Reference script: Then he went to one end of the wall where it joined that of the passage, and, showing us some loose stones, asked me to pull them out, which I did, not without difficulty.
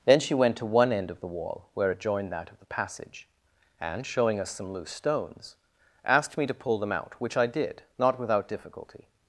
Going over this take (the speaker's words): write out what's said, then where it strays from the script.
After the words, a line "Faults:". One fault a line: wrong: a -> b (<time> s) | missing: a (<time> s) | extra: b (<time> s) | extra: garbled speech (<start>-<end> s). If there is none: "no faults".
Then she went to one end of the wall where it joined that of the passage, and, showing us some loose stones, asked me to pull them out, which I did, not without difficulty.
Faults:
wrong: he -> she (0.2 s)